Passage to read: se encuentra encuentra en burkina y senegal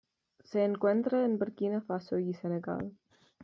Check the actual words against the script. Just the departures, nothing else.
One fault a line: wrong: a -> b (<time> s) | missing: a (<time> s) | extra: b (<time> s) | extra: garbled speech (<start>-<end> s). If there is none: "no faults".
missing: encuentra (1.2 s)
extra: faso (1.8 s)